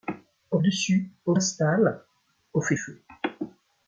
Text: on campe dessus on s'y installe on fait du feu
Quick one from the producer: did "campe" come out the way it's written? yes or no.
no